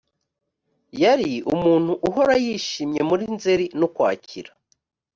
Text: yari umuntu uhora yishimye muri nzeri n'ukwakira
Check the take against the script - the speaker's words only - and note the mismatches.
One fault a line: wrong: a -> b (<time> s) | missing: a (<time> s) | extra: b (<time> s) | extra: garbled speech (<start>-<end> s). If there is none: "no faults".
no faults